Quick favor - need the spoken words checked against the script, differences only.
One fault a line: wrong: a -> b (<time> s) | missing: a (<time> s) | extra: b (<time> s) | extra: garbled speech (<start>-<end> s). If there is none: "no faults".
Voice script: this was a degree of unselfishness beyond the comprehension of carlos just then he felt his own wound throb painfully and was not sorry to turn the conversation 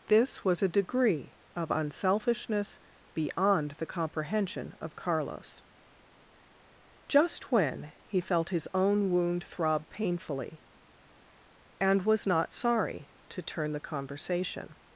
wrong: then -> when (7.5 s)